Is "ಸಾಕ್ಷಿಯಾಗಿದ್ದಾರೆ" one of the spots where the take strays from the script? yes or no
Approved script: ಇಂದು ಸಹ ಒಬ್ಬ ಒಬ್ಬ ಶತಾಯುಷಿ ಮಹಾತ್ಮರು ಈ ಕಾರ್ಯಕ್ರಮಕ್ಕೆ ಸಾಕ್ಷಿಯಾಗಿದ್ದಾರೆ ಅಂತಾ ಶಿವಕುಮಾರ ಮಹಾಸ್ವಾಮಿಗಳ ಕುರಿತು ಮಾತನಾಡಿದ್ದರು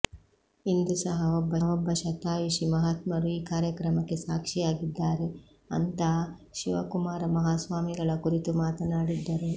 no